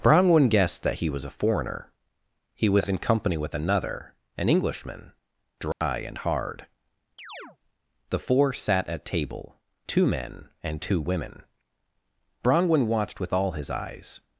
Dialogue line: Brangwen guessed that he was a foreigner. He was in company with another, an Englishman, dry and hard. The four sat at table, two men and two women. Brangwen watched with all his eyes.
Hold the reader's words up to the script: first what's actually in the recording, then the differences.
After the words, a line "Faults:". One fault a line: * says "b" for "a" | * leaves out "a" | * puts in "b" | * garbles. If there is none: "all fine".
Brangwen guessed that he was a foreigner. He was in company with another, an Englishman, dry and hard. The four sat at table, two men and two women. Brangwen watched with all his eyes.
Faults:
all fine